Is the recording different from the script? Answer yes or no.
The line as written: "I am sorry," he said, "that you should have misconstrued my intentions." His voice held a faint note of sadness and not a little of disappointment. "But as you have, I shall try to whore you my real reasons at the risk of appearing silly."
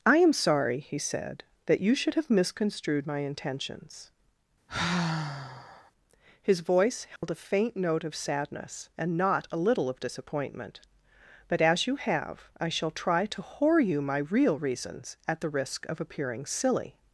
no